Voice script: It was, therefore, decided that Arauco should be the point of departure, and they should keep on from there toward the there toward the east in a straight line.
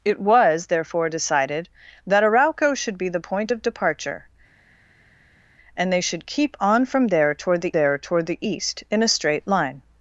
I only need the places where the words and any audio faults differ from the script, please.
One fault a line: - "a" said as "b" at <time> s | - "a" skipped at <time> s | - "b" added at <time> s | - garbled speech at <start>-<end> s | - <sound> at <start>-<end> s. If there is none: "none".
none